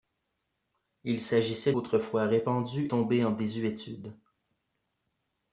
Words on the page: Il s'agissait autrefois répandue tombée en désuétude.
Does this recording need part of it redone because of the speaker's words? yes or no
no